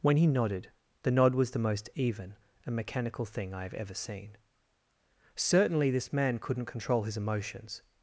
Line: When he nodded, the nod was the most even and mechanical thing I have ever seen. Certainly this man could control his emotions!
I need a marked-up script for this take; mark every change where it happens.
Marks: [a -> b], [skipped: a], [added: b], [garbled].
When he nodded, the nod was the most even and mechanical thing I have ever seen. Certainly this man [could -> couldn't] control his emotions!